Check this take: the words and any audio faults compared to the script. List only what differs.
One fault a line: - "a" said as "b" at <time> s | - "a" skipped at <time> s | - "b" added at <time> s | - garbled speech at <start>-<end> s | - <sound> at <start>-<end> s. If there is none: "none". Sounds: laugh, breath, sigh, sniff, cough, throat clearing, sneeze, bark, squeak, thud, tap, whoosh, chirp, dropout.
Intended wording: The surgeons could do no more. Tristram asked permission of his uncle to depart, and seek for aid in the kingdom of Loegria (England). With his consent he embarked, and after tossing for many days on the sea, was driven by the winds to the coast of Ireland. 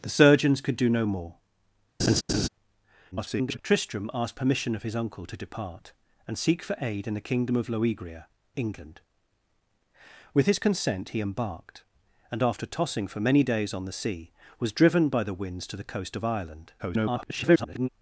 - laugh at 2.0-2.5 s
- garbled speech at 3.1-3.6 s
- garbled speech at 16.8-17.9 s